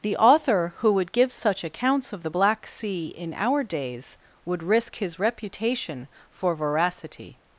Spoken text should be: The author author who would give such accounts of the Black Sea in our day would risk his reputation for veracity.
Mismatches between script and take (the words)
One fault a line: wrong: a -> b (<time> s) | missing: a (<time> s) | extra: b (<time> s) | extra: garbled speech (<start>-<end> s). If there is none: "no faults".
missing: author (0.7 s)
wrong: day -> days (3.6 s)